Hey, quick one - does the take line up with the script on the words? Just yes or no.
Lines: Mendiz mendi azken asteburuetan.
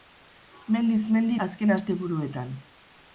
yes